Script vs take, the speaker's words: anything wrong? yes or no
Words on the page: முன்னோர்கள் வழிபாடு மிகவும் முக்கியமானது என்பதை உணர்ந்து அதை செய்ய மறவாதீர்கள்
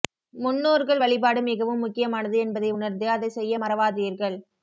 no